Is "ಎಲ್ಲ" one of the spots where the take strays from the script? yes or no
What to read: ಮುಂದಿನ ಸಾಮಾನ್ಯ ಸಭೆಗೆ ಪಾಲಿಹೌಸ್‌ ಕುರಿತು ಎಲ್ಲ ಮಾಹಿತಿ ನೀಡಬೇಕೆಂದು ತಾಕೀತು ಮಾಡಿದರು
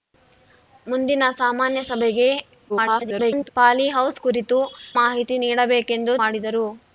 yes